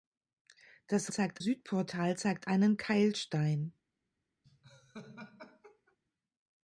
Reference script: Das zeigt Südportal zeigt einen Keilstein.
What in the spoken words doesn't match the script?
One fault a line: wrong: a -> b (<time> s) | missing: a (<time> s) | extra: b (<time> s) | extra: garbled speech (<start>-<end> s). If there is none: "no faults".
no faults